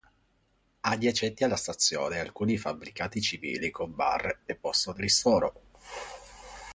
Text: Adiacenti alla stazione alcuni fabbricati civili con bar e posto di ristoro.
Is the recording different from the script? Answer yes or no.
no